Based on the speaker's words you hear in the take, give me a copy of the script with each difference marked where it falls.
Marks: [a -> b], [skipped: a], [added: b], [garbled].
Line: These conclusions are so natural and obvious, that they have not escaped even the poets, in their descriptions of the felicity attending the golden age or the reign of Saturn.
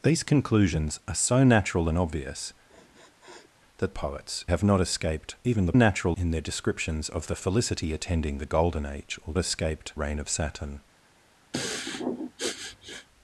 These conclusions are so natural and obvious, that [they -> poets] have not escaped even the [poets, -> natural] in their descriptions of the felicity attending the golden age or [the -> escaped] reign of Saturn.